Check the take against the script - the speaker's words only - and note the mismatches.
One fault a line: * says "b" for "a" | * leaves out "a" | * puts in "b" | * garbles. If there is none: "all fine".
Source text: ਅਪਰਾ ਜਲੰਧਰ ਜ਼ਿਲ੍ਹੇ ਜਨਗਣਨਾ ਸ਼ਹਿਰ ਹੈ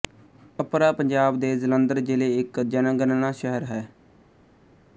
* puts in "ਪੰਜਾਬ ਦੇ"
* puts in "ਇੱਕ"